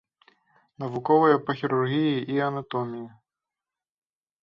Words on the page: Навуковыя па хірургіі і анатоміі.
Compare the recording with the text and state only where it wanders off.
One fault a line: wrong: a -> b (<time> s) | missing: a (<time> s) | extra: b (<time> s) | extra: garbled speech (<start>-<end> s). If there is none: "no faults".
no faults